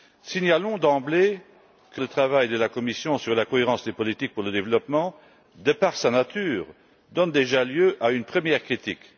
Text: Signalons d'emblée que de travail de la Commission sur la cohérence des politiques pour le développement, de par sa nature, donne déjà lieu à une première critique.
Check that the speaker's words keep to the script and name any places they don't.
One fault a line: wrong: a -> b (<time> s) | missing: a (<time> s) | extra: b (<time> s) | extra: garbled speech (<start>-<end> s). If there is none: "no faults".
no faults